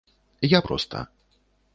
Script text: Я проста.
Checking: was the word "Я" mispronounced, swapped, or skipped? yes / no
no